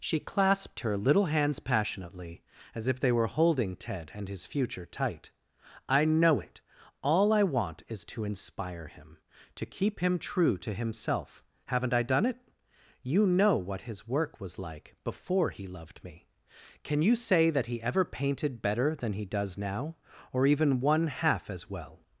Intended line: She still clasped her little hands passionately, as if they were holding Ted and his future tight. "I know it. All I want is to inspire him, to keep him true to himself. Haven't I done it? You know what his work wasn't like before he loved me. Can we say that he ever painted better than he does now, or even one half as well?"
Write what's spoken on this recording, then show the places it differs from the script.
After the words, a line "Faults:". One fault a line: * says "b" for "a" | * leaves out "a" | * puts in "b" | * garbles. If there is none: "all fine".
She clasped her little hands passionately, as if they were holding Ted and his future tight. "I know it. All I want is to inspire him, to keep him true to himself. Haven't I done it? You know what his work was like before he loved me. Can you say that he ever painted better than he does now, or even one half as well?"
Faults:
* leaves out "still"
* says "was" for "wasn't"
* says "you" for "we"